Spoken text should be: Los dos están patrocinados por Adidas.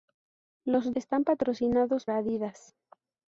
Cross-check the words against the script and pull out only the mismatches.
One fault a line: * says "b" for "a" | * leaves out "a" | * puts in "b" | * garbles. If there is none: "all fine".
* leaves out "dos"
* leaves out "por"